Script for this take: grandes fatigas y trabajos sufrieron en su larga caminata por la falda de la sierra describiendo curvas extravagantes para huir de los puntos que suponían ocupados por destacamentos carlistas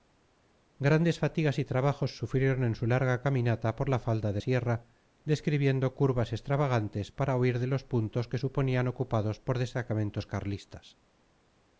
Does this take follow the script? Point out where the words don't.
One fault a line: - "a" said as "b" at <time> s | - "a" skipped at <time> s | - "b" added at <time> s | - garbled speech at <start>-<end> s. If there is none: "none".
- "la" skipped at 4.4 s